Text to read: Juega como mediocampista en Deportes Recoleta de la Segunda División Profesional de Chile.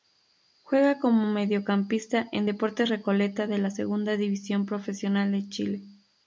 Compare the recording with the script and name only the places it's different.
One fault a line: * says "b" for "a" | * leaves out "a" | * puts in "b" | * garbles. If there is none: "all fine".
all fine